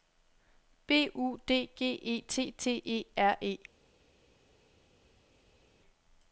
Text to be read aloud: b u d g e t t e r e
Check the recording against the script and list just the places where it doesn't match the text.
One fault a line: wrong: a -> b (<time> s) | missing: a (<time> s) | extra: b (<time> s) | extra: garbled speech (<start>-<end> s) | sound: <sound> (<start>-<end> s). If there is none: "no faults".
no faults